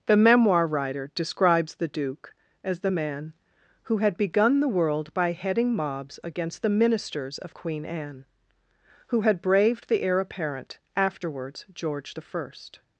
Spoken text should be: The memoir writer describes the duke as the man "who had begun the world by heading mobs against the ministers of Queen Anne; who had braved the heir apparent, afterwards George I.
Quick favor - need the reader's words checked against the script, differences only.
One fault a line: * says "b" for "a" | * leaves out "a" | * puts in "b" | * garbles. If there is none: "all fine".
all fine